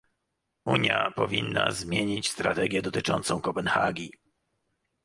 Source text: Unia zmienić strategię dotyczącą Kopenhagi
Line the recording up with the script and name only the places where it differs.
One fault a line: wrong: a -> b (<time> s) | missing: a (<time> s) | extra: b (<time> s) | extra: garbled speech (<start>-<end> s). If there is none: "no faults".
extra: powinna (1.1 s)